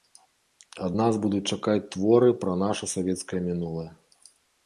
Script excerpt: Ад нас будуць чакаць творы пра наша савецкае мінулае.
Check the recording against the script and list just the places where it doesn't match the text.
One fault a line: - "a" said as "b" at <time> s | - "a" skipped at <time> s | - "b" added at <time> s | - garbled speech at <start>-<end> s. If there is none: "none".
none